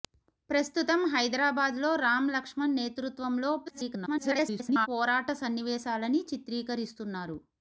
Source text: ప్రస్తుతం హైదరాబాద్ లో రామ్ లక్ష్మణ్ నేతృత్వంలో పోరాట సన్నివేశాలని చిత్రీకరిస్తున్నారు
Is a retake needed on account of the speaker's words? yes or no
yes